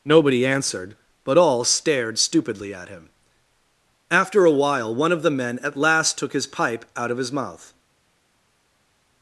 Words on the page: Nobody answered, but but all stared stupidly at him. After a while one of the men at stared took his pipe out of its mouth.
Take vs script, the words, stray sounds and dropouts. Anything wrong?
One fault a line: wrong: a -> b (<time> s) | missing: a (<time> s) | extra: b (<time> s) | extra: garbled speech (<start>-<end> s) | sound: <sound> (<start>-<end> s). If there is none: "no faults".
missing: but (1.4 s)
wrong: stared -> last (5.8 s)
wrong: its -> his (7.2 s)